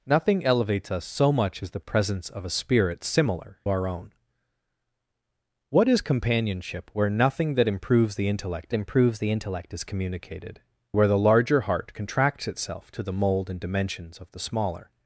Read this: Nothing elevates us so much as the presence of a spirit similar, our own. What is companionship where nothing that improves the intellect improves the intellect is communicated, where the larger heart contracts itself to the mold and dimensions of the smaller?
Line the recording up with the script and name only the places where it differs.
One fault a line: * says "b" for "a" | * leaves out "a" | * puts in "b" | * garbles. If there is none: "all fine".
all fine